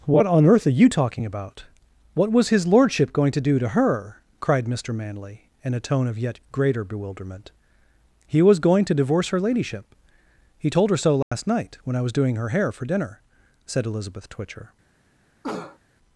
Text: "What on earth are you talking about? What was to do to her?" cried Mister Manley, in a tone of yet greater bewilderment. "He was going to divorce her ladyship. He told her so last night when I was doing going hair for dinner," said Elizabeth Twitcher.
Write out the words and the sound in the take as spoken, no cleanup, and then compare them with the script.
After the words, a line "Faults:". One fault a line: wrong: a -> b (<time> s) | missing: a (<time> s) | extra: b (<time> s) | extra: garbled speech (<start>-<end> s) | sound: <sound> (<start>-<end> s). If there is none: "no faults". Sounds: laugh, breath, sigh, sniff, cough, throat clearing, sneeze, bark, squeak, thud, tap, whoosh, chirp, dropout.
"What on earth are you talking about? What was his lordship going to do to her?" cried Mister Manley, in a tone of yet greater bewilderment. "He was going to divorce her ladyship. He told her so last night when I was doing her hair for dinner," said Elizabeth Twitcher.
Faults:
extra: his lordship going (2.5 s)
sound: dropout (11.2-11.3 s)
wrong: going -> her (12.3 s)
sound: cough (15.4-15.8 s)